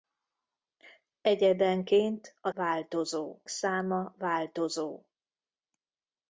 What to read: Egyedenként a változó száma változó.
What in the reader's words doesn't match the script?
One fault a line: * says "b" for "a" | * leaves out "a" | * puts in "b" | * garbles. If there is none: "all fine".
all fine